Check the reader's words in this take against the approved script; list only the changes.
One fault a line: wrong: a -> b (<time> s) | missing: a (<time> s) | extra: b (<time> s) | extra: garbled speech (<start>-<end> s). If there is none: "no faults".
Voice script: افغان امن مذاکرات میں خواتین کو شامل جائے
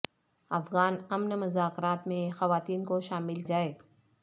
no faults